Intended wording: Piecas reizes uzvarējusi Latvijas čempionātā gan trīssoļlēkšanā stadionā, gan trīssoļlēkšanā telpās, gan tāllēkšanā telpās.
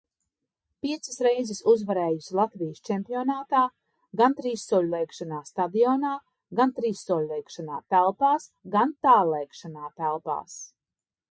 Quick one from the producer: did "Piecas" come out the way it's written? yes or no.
yes